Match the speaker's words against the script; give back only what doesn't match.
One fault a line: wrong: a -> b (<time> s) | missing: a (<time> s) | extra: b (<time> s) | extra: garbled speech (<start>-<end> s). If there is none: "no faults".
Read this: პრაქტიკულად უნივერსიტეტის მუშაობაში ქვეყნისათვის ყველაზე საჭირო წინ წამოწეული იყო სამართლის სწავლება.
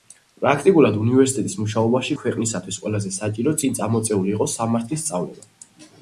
no faults